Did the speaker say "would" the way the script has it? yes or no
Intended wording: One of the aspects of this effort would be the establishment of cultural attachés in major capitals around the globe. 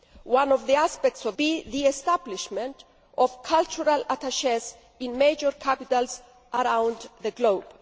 no